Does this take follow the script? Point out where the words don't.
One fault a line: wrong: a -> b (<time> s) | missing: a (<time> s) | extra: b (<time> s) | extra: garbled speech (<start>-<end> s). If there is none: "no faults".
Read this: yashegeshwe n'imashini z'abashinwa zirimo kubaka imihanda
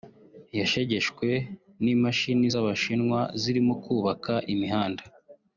no faults